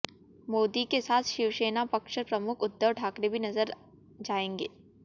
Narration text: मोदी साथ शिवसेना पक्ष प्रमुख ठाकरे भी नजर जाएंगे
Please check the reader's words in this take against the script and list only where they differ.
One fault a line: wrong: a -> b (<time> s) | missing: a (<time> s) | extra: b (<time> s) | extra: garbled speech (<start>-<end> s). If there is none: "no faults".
extra: के (0.8 s)
extra: उद्धव (2.6 s)